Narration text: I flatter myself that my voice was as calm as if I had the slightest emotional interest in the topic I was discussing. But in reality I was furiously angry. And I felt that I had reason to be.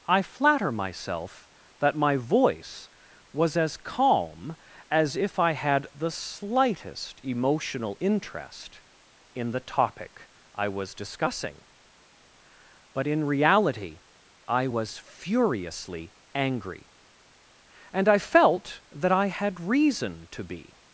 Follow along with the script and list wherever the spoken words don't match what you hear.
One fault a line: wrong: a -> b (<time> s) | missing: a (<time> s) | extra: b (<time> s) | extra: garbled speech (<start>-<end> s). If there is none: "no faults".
no faults